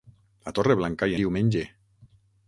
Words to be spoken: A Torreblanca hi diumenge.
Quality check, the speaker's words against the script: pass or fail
pass